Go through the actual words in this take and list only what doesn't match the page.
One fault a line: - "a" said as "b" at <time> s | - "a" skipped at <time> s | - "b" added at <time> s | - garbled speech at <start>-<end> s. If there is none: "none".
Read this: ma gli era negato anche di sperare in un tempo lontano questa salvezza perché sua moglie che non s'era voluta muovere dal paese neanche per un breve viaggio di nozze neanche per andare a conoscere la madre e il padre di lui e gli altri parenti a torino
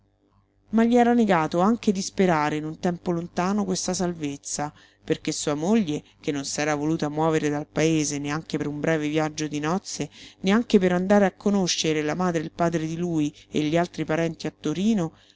none